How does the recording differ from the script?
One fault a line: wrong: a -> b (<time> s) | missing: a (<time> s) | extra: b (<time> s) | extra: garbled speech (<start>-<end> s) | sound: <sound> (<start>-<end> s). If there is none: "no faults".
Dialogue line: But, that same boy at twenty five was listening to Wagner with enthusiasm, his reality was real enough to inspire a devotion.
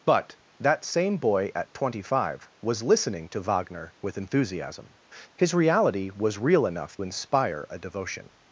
missing: to (7.0 s)